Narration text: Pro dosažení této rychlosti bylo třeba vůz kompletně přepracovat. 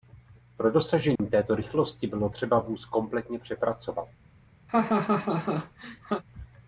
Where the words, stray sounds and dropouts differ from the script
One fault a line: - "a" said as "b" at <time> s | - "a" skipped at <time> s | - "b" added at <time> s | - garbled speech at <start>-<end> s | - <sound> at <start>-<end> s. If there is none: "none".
- dropout at 1.2-1.2 s
- laugh at 4.7-6.2 s